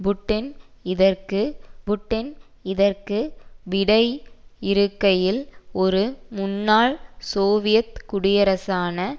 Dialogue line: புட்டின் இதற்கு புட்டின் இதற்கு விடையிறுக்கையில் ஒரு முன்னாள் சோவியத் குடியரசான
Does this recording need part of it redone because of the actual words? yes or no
no